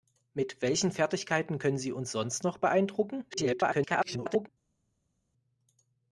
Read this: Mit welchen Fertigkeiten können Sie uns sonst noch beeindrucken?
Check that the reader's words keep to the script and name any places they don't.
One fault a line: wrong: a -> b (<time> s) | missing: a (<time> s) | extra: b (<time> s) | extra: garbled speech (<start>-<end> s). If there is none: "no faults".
extra: garbled speech (3.3-4.5 s)